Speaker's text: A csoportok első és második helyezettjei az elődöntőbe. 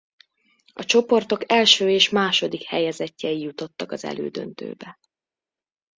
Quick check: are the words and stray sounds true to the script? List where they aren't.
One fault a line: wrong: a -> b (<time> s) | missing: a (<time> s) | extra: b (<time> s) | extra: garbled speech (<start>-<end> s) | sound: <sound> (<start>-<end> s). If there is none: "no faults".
extra: jutottak (3.4 s)